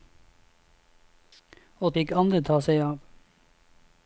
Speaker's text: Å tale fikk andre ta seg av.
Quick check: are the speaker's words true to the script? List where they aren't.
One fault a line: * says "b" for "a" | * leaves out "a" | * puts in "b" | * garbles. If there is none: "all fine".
* leaves out "tale"